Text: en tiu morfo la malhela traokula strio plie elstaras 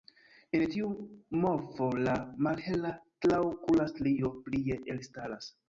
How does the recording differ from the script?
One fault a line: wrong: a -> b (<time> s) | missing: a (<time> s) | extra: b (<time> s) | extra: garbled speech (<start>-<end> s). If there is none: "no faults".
no faults